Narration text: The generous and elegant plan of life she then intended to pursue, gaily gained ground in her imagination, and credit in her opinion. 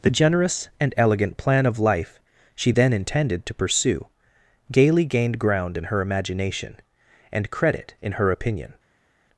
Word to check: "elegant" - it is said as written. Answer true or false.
true